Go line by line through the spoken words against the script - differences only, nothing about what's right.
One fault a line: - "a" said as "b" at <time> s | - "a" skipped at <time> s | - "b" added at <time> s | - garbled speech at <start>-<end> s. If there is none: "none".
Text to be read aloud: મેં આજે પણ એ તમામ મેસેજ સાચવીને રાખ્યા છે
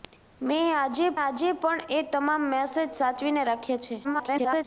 - "આજે" added at 1.2 s
- garbled speech at 4.0-4.6 s